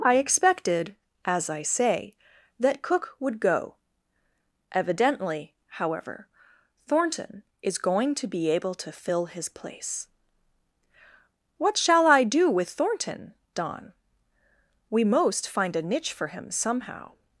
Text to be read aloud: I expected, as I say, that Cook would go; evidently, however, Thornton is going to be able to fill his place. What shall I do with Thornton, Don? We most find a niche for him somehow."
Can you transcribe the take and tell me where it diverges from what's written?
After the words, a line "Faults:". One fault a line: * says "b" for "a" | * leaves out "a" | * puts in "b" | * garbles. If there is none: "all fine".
I expected, as I say, that Cook would go; evidently, however, Thornton is going to be able to fill his place. What shall I do with Thornton, Don? We most find a niche for him somehow."
Faults:
all fine